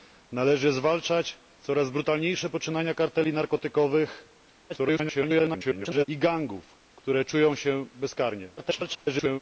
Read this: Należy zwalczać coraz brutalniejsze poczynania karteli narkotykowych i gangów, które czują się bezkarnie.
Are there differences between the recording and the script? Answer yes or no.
yes